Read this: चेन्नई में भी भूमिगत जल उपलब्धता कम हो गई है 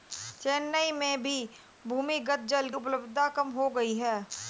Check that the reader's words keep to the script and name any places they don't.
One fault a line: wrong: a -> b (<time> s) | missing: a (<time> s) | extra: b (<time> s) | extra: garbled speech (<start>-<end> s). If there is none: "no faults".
no faults